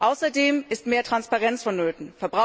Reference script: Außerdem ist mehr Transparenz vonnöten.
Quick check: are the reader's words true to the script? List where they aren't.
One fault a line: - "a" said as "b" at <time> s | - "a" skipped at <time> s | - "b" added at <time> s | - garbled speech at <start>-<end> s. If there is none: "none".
none